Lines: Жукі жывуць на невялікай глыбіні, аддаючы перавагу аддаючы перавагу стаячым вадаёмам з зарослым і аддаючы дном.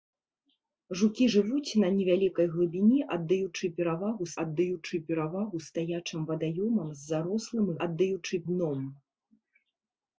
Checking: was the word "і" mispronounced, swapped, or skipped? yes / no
no